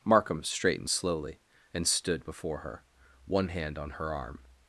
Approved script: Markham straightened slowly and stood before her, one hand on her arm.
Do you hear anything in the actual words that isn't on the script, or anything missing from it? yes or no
no